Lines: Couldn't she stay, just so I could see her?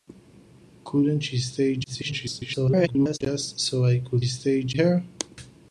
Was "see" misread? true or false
true